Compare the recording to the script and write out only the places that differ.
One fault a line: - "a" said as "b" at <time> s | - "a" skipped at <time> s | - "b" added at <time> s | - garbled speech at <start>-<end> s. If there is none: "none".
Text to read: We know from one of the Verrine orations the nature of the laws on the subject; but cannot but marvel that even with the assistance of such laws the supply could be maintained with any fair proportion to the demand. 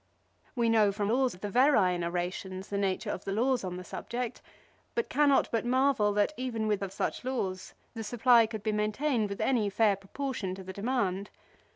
- "one" said as "laws" at 1.1 s
- "the assistance" skipped at 6.8 s